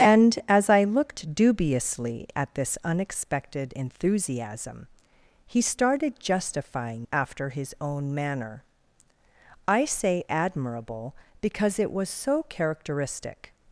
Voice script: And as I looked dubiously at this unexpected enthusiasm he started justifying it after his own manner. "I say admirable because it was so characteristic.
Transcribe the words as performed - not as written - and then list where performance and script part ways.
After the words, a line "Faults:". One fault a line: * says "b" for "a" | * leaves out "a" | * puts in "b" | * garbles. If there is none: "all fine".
And as I looked dubiously at this unexpected enthusiasm he started justifying after his own manner. "I say admirable because it was so characteristic.
Faults:
* leaves out "it"